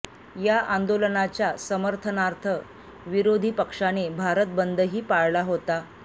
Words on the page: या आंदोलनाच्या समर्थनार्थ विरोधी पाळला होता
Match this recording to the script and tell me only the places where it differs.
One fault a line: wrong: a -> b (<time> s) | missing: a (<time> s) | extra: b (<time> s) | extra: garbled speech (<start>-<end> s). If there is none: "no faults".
extra: पक्षाने भारत बंदही (3.5 s)